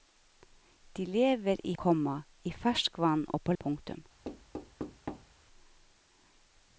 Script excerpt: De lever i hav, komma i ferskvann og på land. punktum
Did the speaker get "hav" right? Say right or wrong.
wrong